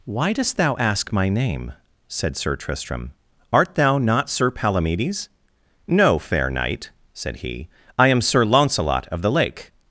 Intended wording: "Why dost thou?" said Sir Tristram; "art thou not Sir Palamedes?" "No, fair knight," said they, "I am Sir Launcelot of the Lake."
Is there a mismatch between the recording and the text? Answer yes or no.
yes